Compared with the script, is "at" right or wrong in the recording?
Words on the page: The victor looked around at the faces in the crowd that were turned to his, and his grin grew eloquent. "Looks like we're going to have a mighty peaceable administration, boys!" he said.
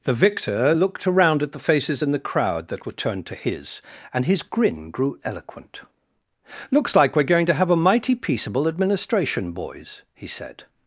right